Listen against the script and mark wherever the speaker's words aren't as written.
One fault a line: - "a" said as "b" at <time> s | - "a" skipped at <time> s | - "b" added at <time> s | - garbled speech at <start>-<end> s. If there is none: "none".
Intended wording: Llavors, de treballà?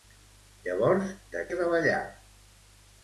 none